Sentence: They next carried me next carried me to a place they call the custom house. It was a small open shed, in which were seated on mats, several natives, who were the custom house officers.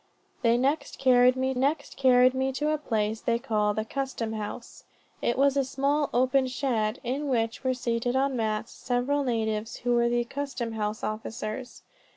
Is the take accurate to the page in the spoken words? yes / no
yes